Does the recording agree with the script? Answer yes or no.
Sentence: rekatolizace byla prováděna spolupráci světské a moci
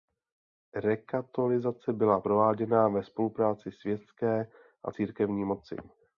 no